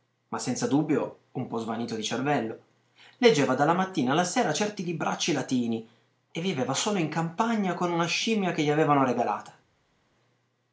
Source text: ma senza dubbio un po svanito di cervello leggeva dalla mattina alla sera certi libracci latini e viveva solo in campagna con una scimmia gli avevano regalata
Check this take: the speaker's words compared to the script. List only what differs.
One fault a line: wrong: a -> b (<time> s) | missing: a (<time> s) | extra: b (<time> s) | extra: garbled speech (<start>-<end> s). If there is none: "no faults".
extra: che (8.5 s)